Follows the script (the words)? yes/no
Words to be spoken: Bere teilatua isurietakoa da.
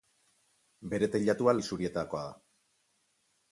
yes